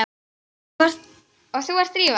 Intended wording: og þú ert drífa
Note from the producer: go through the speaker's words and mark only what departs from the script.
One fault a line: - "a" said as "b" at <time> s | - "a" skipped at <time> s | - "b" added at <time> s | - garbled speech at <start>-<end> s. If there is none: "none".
none